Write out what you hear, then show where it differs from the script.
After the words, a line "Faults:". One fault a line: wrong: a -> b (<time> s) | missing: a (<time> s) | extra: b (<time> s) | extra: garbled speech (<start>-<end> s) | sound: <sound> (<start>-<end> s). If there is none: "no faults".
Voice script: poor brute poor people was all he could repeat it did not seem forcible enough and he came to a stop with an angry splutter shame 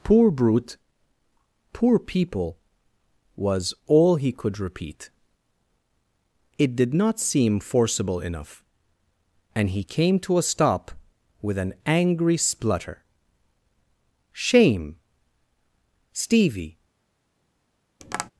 poor brute poor people was all he could repeat it did not seem forcible enough and he came to a stop with an angry splutter shame stevie
Faults:
extra: stevie (16.1 s)
sound: tap (18.0-18.3 s)